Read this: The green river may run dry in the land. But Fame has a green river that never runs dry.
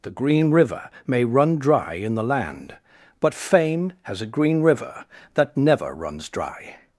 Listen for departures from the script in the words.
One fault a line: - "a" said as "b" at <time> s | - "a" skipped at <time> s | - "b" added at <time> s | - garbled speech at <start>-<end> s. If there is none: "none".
none